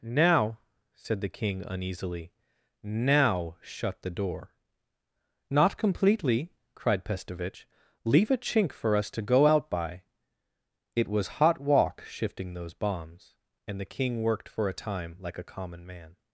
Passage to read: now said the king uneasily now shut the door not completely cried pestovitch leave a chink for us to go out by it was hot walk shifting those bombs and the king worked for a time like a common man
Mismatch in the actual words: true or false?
false